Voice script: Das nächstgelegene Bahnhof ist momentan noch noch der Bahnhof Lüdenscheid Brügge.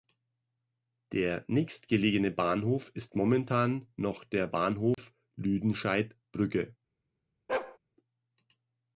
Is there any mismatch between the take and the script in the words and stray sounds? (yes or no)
yes